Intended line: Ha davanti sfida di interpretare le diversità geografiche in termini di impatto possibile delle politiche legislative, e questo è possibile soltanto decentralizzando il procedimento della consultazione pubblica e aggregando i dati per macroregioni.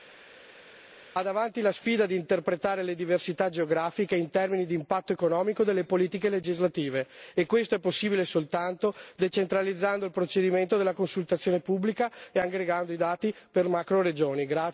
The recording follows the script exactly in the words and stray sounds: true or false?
false